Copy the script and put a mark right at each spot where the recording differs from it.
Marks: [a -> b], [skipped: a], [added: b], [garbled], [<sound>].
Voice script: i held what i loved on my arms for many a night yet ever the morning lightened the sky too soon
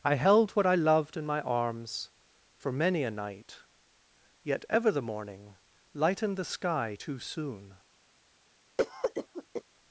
i held what i loved [on -> in] my arms for many a night yet ever the morning lightened the sky too soon [cough]